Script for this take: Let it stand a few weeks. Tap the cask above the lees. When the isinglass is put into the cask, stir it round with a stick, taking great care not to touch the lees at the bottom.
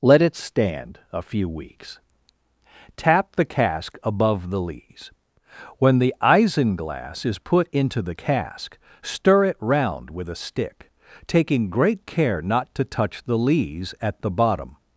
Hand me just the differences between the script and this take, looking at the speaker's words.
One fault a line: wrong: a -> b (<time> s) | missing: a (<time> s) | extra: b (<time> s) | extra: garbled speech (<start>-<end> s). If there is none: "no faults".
no faults